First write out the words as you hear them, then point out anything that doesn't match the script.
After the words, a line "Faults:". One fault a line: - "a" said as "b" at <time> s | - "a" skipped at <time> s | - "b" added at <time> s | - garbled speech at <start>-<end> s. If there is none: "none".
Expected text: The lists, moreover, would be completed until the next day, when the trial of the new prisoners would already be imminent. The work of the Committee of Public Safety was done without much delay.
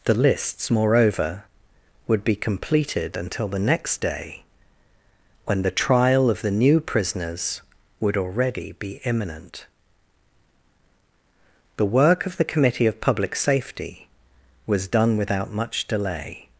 The lists, moreover, would be completed until the next day, when the trial of the new prisoners would already be imminent. The work of the Committee of Public Safety was done without much delay.
Faults:
none